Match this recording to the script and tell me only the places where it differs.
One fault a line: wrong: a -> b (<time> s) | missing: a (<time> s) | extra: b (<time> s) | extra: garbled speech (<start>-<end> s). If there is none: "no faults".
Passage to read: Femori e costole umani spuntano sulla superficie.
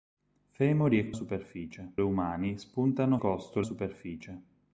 wrong: costole -> superficie (1.1 s)
wrong: sulla -> costole (3.2 s)